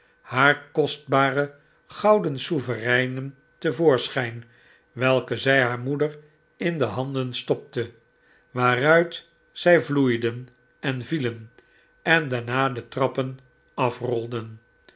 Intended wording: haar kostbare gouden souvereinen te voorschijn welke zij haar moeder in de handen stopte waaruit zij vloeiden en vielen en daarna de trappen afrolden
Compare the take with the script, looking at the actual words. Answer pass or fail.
pass